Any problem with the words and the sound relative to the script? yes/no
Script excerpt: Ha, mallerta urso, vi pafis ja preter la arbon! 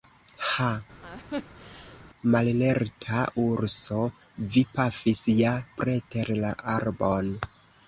yes